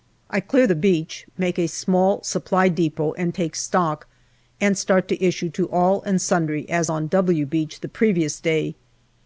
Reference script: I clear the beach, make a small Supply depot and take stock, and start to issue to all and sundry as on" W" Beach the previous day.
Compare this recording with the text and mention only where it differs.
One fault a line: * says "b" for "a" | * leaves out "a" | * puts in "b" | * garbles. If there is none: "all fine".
all fine